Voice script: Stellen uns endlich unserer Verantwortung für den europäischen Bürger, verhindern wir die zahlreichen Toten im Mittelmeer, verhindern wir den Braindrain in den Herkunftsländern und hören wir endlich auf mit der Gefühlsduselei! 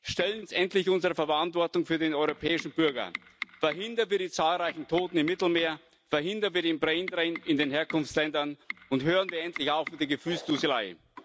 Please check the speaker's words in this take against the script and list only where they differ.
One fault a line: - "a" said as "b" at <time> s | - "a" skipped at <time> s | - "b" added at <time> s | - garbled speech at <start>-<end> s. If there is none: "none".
none